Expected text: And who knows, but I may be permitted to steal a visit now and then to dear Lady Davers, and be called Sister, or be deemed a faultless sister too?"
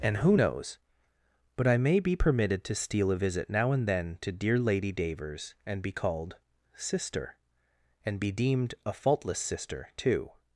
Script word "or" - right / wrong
wrong